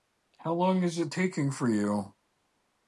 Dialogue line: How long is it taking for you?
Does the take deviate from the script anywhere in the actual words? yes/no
no